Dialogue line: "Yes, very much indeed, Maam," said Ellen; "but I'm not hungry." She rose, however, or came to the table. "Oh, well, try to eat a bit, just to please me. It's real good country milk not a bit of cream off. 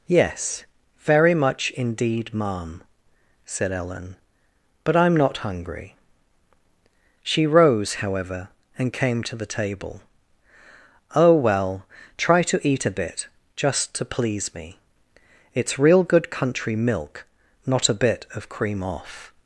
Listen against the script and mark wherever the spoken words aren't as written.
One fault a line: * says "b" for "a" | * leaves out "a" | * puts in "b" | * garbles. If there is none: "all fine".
* says "and" for "or"